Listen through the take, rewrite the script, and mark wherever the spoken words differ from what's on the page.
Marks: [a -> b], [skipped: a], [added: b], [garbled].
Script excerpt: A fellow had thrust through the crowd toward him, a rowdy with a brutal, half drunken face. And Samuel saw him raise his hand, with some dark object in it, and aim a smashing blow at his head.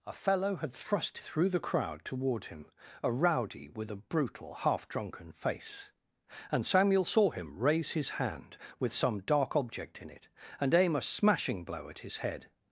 A fellow had thrust through the crowd toward him, a rowdy with a brutal, half drunken face. And Samuel saw him raise his hand, with some dark object in it, and aim a smashing blow at his head.